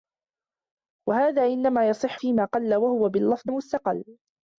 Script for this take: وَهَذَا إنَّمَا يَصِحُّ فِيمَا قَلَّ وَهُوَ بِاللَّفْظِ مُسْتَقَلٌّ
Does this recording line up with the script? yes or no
yes